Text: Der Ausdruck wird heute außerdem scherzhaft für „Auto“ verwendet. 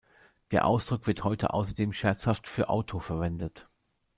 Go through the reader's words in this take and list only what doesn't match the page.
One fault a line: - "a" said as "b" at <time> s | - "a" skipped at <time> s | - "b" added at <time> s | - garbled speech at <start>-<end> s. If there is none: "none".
none